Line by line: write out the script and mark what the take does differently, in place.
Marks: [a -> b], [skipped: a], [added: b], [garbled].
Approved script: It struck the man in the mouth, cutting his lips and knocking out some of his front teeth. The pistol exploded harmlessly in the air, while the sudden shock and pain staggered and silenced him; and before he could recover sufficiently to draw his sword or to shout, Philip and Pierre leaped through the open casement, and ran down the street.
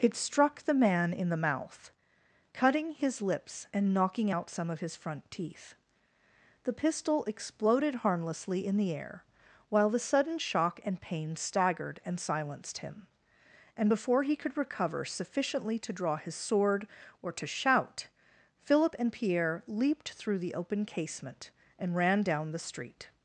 It struck the man in the mouth, cutting his lips and knocking out some of his front teeth. The pistol exploded harmlessly in the air, while the sudden shock and pain staggered and silenced him; and before he could recover sufficiently to draw his sword or to shout, Philip and Pierre leaped through the open casement, and ran down the street.